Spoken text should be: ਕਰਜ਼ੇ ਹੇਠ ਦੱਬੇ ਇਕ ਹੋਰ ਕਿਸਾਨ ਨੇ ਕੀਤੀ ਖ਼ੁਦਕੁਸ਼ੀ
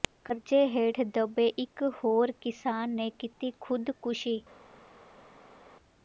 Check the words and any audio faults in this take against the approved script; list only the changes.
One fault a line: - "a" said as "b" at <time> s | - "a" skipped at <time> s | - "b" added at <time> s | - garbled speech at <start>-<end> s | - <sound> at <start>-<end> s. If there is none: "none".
none